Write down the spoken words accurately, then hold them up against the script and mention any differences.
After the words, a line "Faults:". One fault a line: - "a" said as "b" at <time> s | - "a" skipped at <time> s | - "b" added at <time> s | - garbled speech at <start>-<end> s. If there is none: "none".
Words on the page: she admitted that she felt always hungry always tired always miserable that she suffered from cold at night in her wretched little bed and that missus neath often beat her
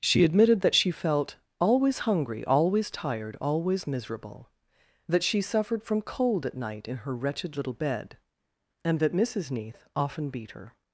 she admitted that she felt always hungry always tired always miserable that she suffered from cold at night in her wretched little bed and that missus neath often beat her
Faults:
none